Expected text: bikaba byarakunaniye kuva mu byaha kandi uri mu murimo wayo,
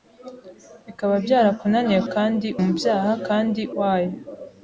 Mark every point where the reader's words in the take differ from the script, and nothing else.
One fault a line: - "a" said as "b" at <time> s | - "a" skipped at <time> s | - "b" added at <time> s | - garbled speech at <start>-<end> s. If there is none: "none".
- "kuva" said as "kandi" at 2.1 s
- "uri mu murimo" skipped at 3.6 s